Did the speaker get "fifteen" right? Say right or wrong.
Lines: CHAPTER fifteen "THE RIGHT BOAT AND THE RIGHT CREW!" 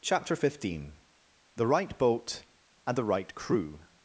right